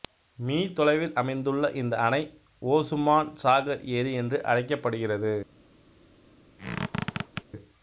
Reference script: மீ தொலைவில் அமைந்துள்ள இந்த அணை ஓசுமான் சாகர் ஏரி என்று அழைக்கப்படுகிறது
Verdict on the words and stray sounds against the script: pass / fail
fail